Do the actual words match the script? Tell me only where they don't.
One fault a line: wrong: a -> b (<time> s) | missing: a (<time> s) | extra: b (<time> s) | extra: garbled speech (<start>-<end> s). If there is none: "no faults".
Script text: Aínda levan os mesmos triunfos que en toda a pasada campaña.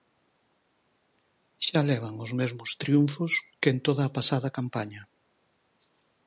wrong: Aínda -> Xa (1.6 s)